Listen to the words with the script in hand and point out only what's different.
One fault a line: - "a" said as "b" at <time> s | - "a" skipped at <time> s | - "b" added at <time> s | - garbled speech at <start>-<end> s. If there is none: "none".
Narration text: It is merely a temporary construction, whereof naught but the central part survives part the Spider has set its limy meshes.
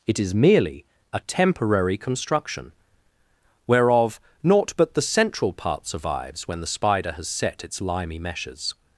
- "part" said as "when" at 6.5 s